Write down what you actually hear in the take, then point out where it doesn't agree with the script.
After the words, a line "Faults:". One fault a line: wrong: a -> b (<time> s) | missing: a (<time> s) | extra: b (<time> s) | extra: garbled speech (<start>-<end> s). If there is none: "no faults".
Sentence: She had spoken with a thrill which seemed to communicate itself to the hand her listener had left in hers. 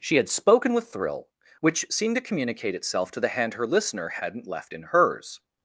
She had spoken with thrill which seemed to communicate itself to the hand her listener hadn't left in hers.
Faults:
missing: a (0.9 s)
wrong: had -> hadn't (4.1 s)